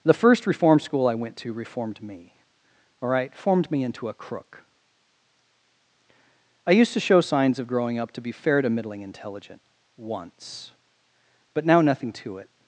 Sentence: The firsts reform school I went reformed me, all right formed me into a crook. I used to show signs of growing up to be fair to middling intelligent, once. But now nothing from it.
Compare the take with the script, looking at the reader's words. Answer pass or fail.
fail